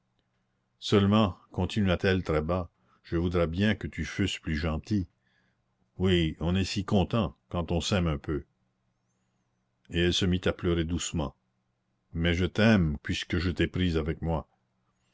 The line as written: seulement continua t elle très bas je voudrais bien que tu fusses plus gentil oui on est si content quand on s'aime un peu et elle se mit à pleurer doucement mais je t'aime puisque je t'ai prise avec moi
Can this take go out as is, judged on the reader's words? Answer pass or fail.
pass